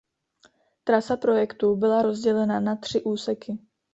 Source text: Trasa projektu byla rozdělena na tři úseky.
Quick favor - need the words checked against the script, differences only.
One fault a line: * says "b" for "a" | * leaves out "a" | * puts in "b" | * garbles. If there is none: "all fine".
all fine